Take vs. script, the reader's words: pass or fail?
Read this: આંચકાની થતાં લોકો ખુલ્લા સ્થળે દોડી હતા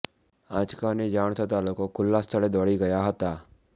fail